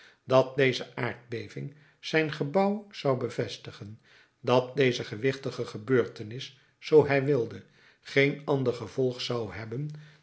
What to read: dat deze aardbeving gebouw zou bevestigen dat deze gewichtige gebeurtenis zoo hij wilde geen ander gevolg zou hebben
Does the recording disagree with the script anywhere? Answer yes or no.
yes